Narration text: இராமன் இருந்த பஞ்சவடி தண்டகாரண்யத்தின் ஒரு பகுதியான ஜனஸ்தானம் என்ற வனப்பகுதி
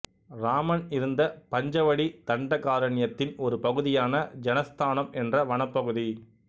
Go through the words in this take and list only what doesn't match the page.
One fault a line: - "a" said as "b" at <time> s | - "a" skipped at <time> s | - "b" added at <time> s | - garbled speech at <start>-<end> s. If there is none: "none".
none